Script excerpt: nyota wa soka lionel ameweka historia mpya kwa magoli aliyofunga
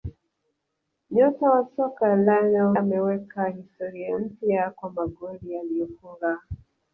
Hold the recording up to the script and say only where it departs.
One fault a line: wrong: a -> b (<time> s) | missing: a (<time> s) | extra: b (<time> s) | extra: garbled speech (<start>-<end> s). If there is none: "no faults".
no faults